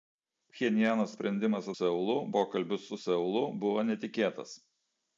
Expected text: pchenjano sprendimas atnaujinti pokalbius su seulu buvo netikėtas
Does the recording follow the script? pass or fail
fail